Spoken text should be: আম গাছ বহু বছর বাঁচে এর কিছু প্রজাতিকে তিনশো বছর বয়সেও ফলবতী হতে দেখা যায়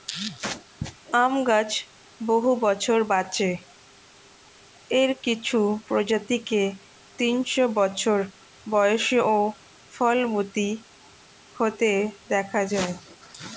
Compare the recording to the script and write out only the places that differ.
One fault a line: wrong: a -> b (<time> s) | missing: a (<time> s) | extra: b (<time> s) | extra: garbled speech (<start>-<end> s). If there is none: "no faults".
no faults